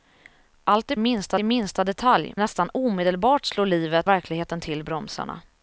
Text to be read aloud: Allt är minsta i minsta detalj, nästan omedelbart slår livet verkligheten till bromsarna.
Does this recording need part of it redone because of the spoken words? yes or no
no